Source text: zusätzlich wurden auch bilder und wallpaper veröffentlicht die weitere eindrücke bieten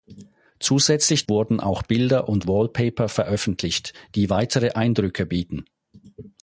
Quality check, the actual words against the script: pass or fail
pass